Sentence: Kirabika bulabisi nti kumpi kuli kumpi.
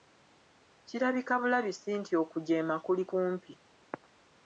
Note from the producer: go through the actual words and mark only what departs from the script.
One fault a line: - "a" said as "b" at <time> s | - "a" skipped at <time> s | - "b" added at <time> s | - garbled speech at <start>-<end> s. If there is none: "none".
- "kumpi" said as "okujeema" at 2.2 s